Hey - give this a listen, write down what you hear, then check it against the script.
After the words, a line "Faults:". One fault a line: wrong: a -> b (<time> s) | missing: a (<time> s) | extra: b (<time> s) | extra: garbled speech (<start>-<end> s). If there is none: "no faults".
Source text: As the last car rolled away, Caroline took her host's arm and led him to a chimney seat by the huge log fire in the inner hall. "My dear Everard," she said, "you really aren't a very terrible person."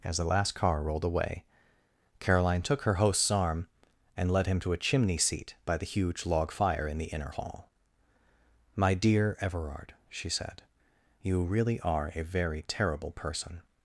As the last car rolled away, Caroline took her host's arm and led him to a chimney seat by the huge log fire in the inner hall. "My dear Everard," she said, "you really are a very terrible person."
Faults:
wrong: aren't -> are (11.8 s)